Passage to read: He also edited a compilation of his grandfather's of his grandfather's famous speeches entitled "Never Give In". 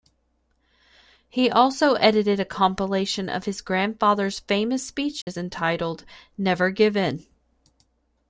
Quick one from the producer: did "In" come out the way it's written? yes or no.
yes